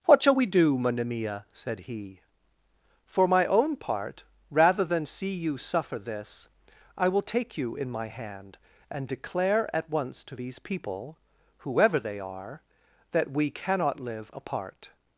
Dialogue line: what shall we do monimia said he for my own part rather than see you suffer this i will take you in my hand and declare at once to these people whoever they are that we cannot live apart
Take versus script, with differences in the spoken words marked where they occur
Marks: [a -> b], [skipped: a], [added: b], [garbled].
what shall we do monimia said he for my own part rather than see you suffer this i will take you in my hand and declare at once to these people whoever they are that we cannot live apart